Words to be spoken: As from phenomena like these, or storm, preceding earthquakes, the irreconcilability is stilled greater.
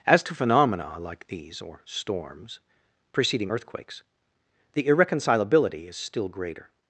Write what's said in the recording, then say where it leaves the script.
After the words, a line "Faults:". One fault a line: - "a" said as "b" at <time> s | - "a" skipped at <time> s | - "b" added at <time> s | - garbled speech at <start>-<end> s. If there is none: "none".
As to phenomena like these, or storms, preceding earthquakes, the irreconcilability is still greater.
Faults:
- "from" said as "to" at 0.2 s
- "storm" said as "storms" at 1.8 s
- "stilled" said as "still" at 6.0 s